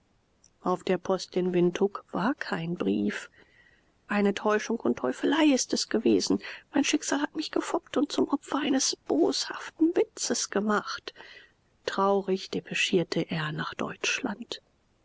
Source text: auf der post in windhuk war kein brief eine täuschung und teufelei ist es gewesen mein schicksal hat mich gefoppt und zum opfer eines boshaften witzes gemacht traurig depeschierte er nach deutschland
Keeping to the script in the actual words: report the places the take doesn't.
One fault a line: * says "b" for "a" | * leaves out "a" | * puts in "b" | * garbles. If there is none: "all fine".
all fine